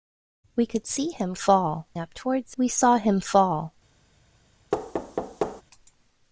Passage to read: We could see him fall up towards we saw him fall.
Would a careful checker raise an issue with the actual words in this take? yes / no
no